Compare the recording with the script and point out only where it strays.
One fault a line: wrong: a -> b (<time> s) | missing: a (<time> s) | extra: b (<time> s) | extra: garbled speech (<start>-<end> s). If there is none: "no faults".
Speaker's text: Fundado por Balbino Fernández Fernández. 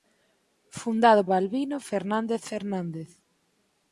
missing: por (1.2 s)